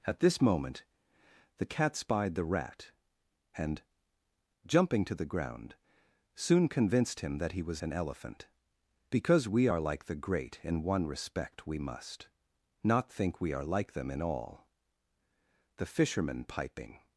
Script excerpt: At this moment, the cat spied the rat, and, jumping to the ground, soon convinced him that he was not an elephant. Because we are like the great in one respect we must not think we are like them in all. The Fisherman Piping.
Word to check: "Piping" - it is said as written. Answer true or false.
true